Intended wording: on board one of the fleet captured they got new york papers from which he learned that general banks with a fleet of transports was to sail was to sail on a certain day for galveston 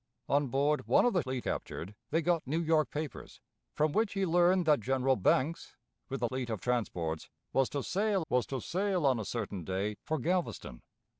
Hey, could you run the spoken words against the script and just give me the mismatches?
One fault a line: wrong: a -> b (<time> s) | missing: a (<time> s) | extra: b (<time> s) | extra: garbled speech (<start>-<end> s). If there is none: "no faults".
no faults